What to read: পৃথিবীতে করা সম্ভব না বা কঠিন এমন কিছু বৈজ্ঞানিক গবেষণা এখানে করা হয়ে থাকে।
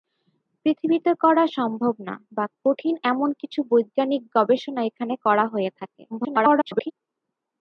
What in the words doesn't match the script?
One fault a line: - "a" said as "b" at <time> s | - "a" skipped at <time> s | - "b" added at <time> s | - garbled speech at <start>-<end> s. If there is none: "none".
- garbled speech at 6.1-6.9 s